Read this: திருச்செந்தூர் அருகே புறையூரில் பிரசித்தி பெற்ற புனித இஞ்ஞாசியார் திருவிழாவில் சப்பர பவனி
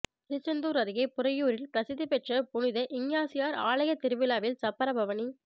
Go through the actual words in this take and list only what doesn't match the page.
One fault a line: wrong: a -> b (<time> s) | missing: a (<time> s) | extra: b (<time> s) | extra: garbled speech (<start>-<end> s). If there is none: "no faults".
extra: ஆலய (3.6 s)